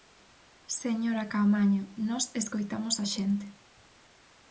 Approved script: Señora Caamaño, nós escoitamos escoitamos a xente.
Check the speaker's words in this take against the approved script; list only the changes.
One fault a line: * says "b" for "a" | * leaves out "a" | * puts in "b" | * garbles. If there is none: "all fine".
* leaves out "escoitamos"